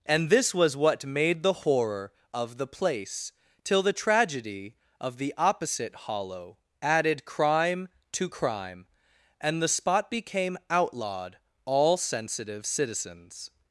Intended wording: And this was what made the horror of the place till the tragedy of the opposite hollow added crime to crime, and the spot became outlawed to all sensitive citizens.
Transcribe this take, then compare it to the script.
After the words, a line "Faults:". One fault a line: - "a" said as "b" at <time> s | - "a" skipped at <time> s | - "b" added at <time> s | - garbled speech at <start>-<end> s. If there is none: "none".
And this was what made the horror of the place till the tragedy of the opposite hollow added crime to crime, and the spot became outlawed all sensitive citizens.
Faults:
- "to" skipped at 11.4 s